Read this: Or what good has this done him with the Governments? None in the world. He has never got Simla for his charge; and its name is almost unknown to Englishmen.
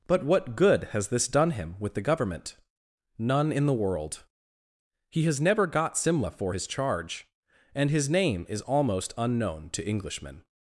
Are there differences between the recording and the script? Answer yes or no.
yes